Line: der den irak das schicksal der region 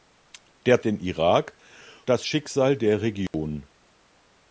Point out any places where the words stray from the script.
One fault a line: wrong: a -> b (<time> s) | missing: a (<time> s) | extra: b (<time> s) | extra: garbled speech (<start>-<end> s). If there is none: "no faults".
no faults